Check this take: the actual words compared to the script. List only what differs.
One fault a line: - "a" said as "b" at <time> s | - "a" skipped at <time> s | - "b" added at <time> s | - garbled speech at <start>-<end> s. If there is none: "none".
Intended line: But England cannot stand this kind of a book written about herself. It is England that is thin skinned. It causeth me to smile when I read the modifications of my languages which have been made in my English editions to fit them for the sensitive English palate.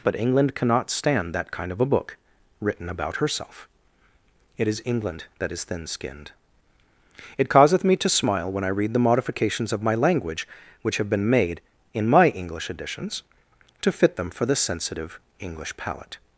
- "this" said as "that" at 1.3 s
- "languages" said as "language" at 9.9 s